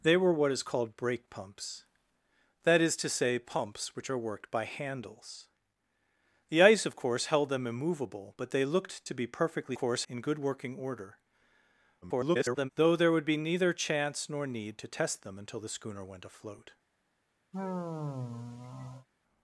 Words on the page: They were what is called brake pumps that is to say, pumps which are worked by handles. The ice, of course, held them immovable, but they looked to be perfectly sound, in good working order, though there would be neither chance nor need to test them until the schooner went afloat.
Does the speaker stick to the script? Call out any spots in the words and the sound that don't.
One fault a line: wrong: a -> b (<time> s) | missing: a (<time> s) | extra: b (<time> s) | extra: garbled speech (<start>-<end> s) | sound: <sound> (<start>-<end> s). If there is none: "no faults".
wrong: sound -> course (9.7 s)
extra: garbled speech (12.0-12.7 s)
sound: sigh (17.5-19.1 s)